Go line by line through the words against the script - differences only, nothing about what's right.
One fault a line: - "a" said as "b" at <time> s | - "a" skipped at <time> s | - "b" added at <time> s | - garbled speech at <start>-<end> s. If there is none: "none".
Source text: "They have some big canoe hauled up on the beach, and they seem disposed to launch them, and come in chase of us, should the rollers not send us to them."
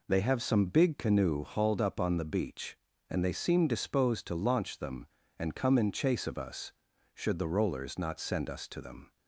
none